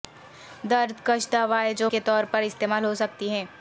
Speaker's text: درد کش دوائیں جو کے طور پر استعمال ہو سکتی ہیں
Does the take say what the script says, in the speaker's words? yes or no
yes